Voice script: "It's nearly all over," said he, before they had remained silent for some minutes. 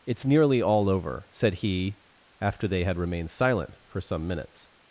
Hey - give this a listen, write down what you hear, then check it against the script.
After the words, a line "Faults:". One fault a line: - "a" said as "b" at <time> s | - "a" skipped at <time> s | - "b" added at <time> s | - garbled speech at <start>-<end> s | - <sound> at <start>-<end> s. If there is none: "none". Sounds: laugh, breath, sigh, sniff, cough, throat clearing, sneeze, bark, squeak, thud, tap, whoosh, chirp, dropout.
"It's nearly all over," said he, after they had remained silent for some minutes.
Faults:
- "before" said as "after" at 2.4 s